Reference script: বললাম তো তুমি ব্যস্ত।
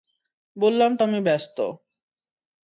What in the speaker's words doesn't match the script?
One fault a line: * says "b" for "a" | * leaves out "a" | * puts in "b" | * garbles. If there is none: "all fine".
* says "আমি" for "তুমি"